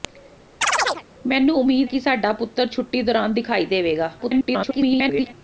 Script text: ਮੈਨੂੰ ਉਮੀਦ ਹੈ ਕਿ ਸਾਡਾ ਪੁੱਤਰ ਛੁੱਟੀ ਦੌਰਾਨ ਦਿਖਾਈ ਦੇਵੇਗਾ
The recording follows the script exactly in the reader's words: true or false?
false